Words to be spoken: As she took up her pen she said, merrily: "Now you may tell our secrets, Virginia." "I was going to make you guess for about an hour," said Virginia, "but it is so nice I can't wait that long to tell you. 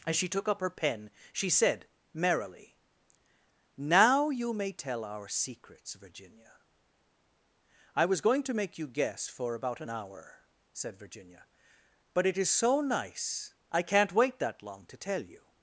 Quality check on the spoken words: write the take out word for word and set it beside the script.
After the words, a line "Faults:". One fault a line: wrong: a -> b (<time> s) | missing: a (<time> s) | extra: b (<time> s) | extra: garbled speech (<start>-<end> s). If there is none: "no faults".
As she took up her pen she said, merrily: "Now you may tell our secrets, Virginia." "I was going to make you guess for about an hour," said Virginia, "but it is so nice I can't wait that long to tell you.
Faults:
no faults